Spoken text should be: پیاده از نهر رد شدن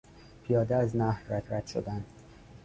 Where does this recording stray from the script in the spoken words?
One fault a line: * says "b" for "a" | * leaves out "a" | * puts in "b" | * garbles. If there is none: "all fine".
* puts in "رد"